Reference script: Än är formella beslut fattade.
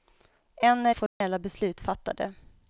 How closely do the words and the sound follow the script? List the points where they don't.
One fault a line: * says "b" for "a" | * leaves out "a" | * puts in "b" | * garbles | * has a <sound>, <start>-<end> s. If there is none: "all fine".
* has a dropout, 1.1-1.2 s